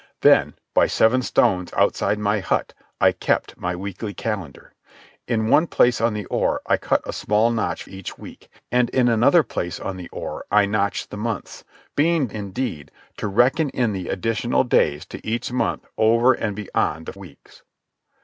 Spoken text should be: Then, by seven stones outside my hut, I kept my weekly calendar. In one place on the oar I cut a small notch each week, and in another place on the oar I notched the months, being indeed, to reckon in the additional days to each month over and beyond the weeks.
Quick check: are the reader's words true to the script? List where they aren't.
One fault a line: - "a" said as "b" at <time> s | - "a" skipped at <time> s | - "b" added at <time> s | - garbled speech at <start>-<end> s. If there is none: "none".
none